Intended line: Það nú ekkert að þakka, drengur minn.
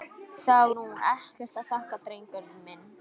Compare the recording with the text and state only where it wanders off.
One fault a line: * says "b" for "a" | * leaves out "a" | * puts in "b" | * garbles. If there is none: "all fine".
all fine